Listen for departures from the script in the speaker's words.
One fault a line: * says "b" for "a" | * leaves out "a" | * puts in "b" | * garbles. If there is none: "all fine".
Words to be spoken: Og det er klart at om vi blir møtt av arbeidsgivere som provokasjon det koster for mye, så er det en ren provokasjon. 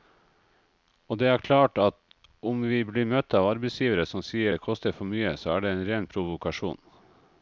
* says "sier" for "provokasjon"